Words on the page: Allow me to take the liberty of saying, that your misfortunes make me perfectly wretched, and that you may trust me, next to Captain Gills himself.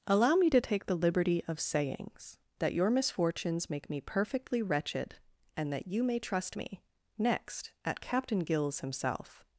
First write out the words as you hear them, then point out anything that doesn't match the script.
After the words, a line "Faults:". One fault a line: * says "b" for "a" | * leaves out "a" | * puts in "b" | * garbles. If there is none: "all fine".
Allow me to take the liberty of sayings, that your misfortunes make me perfectly wretched, and that you may trust me, next at Captain Gills himself.
Faults:
* says "sayings" for "saying"
* says "at" for "to"